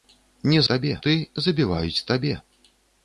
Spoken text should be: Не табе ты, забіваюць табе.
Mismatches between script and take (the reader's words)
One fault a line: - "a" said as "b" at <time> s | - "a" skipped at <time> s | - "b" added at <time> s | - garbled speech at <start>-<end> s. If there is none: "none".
none